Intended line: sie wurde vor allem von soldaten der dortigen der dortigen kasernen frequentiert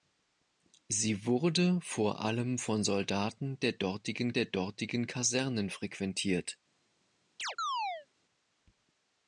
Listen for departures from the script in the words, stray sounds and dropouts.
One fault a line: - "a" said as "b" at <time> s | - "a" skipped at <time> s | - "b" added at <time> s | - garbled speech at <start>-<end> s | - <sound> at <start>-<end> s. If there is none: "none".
- chirp at 7.4-8.1 s